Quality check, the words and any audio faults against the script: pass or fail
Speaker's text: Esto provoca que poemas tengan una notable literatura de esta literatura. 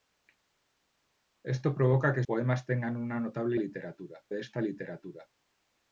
pass